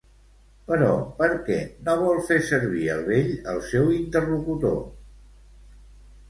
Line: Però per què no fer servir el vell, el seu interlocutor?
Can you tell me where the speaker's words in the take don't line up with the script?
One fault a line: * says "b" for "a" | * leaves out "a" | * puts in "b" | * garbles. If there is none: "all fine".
* puts in "vol"